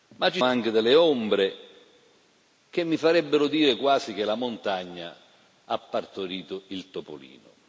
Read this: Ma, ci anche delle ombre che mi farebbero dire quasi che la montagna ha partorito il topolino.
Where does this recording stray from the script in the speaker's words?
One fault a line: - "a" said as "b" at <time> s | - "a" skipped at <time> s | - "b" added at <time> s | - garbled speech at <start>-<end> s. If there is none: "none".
none